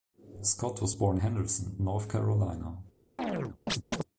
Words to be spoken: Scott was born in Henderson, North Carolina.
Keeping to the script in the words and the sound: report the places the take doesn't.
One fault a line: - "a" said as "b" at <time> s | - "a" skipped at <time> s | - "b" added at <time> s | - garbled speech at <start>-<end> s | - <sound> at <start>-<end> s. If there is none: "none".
- "in" skipped at 1.2 s
- chirp at 3.2-4.0 s